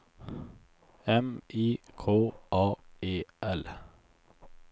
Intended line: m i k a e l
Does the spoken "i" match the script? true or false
true